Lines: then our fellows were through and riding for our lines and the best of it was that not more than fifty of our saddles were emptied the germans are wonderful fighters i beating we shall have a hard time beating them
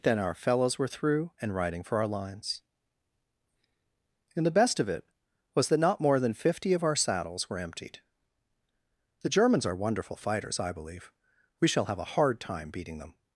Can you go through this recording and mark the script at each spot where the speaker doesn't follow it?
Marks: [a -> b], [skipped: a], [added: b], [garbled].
then our fellows were through and riding for our lines and the best of it was that not more than fifty of our saddles were emptied the germans are wonderful fighters i [beating -> believe] we shall have a hard time beating them